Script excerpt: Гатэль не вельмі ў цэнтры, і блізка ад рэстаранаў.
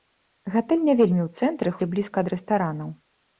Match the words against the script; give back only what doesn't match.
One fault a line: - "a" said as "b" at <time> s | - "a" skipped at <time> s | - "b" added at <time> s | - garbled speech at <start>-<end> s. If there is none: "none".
none